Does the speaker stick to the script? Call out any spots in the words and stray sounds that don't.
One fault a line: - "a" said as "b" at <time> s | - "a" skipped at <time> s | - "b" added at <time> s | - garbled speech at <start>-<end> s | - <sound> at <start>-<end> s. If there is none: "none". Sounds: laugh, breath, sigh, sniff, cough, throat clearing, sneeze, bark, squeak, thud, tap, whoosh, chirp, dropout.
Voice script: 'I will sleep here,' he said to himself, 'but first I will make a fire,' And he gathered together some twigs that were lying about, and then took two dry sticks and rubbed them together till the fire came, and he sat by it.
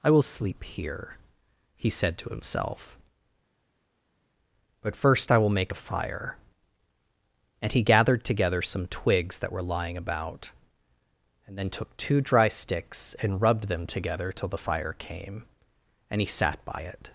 none